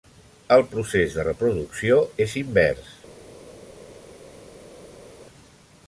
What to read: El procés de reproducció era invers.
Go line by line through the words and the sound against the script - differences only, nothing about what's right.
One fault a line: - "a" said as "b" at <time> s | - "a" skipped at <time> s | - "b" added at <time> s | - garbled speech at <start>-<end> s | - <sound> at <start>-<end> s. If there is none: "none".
- "era" said as "és" at 2.3 s